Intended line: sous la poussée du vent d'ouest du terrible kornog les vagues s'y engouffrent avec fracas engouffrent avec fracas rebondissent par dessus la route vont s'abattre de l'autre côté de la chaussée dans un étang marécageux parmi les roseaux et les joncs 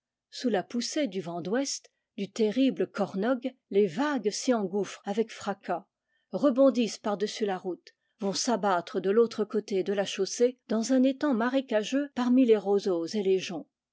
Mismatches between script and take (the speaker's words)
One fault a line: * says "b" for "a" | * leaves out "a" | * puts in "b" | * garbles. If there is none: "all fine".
* leaves out "engouffrent avec fracas"